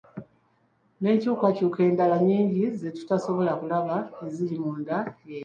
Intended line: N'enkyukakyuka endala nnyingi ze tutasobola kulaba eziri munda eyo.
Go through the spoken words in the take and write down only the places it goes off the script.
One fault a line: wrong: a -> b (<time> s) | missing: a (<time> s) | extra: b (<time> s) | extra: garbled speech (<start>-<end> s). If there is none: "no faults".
no faults